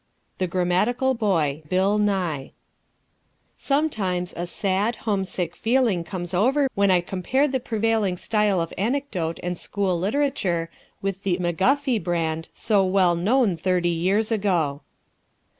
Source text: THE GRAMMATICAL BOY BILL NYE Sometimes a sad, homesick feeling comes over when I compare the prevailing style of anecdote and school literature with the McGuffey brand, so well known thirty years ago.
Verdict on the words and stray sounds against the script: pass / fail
pass